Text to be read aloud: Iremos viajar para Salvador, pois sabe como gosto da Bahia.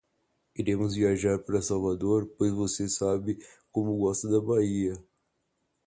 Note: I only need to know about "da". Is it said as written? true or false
true